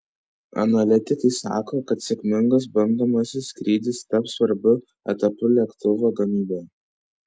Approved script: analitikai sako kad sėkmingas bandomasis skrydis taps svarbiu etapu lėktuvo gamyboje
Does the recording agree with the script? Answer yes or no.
yes